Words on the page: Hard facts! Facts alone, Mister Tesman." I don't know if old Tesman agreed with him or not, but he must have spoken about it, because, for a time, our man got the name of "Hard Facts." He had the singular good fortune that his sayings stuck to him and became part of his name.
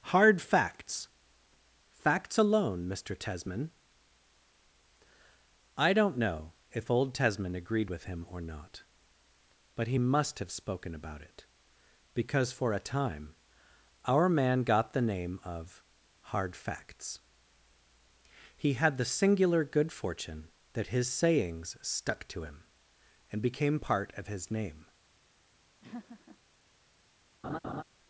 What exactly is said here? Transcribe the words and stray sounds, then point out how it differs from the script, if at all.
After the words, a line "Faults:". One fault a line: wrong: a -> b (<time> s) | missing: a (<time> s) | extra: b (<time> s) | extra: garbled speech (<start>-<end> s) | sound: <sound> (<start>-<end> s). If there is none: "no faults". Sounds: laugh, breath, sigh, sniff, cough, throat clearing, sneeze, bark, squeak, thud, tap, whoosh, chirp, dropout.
Hard facts! Facts alone, Mister Tesman." I don't know if old Tesman agreed with him or not, but he must have spoken about it, because, for a time, our man got the name of "Hard Facts." He had the singular good fortune that his sayings stuck to him and became part of his name.
Faults:
sound: laugh (25.8-26.4 s)
sound: laugh (27.4-27.8 s)